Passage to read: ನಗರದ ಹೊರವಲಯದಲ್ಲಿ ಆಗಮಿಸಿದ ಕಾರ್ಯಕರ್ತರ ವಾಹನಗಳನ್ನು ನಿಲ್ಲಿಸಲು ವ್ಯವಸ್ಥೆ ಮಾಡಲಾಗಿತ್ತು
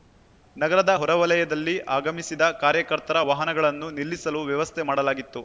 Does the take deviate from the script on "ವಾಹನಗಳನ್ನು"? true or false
false